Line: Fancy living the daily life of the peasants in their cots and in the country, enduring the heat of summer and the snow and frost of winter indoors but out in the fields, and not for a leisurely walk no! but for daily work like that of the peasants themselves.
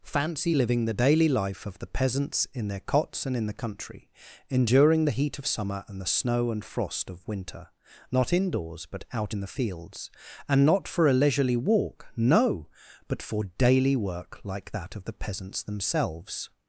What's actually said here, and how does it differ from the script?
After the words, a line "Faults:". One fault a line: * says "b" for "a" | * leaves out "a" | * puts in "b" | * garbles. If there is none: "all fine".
Fancy living the daily life of the peasants in their cots and in the country, enduring the heat of summer and the snow and frost of winter not indoors but out in the fields, and not for a leisurely walk no! but for daily work like that of the peasants themselves.
Faults:
* puts in "not"